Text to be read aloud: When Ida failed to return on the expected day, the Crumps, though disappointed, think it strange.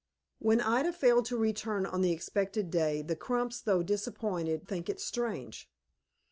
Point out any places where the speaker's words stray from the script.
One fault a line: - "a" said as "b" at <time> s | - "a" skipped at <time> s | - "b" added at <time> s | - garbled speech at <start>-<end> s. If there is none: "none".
none